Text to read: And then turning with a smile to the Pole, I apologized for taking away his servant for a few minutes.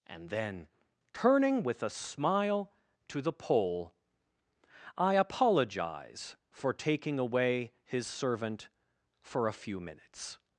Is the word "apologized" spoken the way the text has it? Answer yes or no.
no